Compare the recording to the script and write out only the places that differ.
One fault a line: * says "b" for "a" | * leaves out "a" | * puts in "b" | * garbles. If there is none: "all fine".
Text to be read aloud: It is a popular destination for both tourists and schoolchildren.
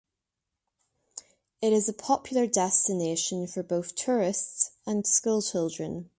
all fine